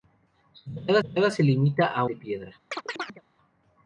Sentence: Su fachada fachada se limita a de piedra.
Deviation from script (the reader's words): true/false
false